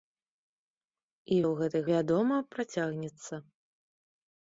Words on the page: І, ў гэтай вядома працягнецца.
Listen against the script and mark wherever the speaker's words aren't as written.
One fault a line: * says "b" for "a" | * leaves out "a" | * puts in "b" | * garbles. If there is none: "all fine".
all fine